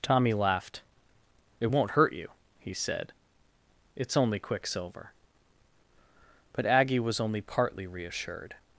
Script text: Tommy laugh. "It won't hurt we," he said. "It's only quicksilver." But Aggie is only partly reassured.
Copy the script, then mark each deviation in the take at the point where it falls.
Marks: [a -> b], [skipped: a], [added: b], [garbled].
Tommy [laugh. -> laughed] "It won't hurt [we," -> you] he said. "It's only quicksilver." But Aggie [is -> was] only partly reassured.